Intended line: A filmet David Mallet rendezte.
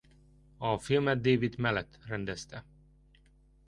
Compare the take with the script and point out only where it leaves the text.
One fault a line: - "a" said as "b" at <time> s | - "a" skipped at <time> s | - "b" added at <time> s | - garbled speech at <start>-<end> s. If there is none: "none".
none